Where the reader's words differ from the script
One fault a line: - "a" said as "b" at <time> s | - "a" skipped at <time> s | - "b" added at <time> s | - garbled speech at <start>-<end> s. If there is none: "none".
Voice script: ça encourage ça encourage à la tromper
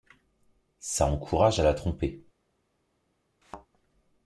- "ça encourage" skipped at 1.6 s